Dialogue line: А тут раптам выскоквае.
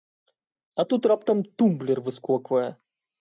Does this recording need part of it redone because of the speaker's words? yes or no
yes